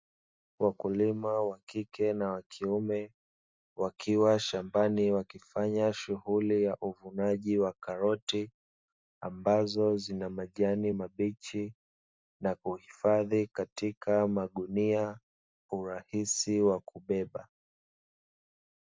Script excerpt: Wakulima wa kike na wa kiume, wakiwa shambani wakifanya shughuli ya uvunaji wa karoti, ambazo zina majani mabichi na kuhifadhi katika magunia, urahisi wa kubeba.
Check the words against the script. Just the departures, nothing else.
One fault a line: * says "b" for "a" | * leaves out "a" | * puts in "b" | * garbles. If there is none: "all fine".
all fine